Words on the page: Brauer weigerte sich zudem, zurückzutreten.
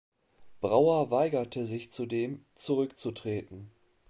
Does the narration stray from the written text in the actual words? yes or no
no